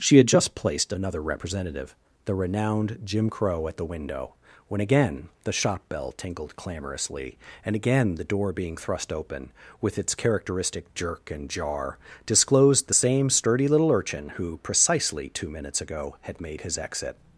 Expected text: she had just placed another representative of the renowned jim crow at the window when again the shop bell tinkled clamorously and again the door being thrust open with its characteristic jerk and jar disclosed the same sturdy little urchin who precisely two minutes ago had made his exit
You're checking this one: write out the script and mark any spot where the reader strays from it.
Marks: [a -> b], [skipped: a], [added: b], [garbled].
she had just placed another representative [skipped: of] the renowned jim crow at the window when again the shop bell tinkled clamorously and again the door being thrust open with its characteristic jerk and jar disclosed the same sturdy little urchin who precisely two minutes ago had made his exit